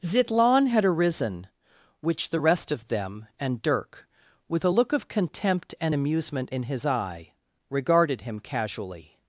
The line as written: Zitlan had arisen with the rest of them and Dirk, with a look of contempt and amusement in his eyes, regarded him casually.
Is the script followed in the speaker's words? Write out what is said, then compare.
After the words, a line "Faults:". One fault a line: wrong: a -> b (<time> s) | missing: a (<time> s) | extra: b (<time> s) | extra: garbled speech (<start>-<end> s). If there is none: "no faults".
Zitlan had arisen which the rest of them and Dirk, with a look of contempt and amusement in his eye, regarded him casually.
Faults:
wrong: with -> which (2.0 s)
wrong: eyes -> eye (6.8 s)